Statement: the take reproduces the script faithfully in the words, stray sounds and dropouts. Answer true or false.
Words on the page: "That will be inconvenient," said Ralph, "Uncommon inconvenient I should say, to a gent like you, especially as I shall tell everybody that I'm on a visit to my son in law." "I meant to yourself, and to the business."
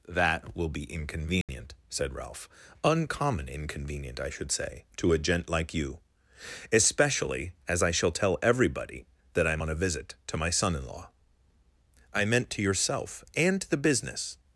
false